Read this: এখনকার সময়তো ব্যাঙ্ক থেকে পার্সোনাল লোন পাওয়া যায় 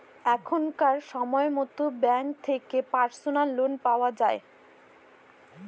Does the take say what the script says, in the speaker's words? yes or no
yes